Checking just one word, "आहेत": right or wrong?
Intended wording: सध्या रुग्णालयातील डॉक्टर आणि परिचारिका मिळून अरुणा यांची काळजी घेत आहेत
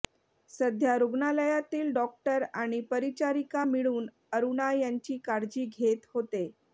wrong